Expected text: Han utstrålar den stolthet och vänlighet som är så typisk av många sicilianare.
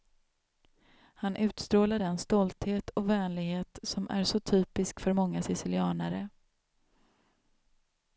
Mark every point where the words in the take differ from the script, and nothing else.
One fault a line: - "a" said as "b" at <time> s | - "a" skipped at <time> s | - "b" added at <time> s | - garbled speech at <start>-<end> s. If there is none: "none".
- "av" said as "för" at 5.0 s